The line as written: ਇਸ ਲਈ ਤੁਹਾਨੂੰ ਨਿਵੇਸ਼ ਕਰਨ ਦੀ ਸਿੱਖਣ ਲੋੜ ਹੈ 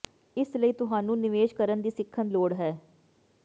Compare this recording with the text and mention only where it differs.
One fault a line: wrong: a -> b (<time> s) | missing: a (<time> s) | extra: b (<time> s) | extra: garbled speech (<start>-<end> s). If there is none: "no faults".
no faults